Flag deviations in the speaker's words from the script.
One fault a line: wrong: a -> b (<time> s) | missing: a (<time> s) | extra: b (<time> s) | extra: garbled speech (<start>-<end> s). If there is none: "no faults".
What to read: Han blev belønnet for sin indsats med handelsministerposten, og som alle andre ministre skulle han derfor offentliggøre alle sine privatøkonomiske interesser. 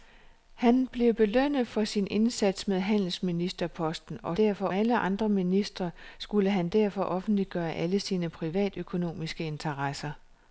wrong: som -> derfor (4.3 s)